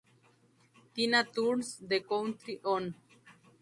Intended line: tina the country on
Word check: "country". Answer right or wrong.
right